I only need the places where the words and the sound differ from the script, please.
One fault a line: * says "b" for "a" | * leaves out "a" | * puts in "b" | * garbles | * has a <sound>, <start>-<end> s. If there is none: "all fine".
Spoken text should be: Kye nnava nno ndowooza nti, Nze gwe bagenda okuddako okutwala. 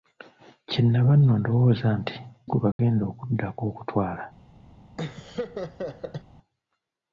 * leaves out "Nze"
* has a dropout, 2.7-2.8 s
* has a laugh, 5.0-6.2 s